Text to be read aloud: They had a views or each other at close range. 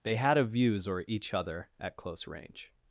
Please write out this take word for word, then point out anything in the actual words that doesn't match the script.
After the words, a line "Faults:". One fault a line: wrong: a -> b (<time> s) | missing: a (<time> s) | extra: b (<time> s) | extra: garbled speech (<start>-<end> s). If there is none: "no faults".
They had a views or each other at close range.
Faults:
no faults